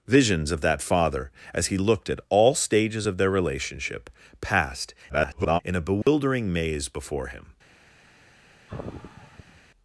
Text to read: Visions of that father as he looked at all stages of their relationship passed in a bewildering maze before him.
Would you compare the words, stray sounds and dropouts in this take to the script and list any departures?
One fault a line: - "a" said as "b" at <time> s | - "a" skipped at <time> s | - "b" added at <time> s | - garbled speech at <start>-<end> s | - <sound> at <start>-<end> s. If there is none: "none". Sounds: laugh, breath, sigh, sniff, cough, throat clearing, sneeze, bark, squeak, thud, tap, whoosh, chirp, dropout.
- garbled speech at 5.1-5.6 s
- dropout at 6.0-6.1 s
- sigh at 8.7-9.6 s